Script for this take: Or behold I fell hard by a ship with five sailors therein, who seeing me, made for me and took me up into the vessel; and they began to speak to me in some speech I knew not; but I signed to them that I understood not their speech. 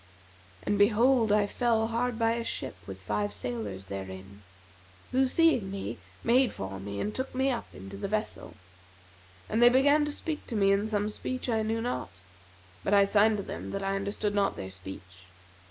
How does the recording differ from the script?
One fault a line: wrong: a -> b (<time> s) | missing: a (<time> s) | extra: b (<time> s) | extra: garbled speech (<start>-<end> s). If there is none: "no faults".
wrong: Or -> And (0.6 s)